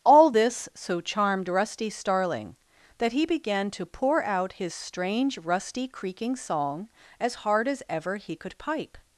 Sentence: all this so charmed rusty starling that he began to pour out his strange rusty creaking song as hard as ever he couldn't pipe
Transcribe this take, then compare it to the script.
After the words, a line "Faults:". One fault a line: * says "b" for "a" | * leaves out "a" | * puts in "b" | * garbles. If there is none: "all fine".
all this so charmed rusty starling that he began to pour out his strange rusty creaking song as hard as ever he could pipe
Faults:
* says "could" for "couldn't"